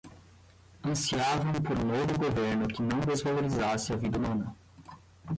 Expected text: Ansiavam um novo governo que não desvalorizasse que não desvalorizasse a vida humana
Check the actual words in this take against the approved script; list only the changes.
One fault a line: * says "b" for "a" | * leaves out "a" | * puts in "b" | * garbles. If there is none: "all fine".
* puts in "por"
* leaves out "que não desvalorizasse"